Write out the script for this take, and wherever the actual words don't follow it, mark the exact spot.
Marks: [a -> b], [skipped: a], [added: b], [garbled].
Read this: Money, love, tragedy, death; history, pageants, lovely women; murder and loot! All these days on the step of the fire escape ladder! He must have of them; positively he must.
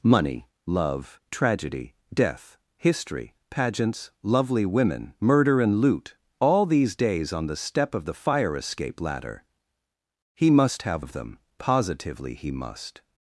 Money, love, tragedy, death; history, pageants, lovely women; murder and loot! All these days on the step of the fire escape ladder! He must have of them; positively he must.